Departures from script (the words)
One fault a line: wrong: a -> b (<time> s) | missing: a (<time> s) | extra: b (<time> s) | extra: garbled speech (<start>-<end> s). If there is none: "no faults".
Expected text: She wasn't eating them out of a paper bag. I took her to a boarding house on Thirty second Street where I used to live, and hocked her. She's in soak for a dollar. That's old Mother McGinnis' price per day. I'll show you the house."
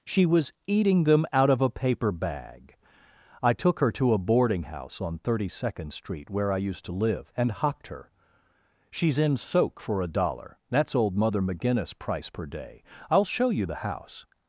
wrong: wasn't -> was (0.2 s)